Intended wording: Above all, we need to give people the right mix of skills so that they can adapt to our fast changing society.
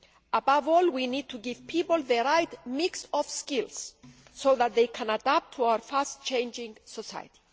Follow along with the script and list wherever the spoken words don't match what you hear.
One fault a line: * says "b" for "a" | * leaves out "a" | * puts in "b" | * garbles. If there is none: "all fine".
all fine